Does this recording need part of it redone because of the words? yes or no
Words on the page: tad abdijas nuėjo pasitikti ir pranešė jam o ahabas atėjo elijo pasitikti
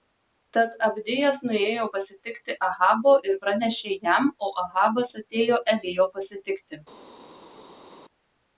yes